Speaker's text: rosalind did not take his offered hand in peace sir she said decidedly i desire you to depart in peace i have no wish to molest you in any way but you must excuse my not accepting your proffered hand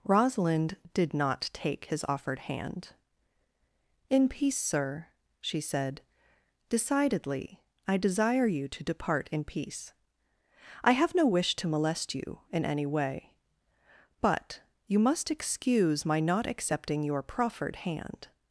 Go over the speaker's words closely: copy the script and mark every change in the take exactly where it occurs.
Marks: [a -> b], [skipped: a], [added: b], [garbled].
rosalind did not take his offered hand in peace sir she said decidedly i desire you to depart in peace i have no wish to molest you in any way but you must excuse my not accepting your proffered hand